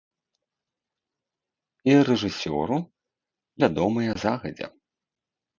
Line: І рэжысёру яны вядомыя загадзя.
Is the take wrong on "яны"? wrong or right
wrong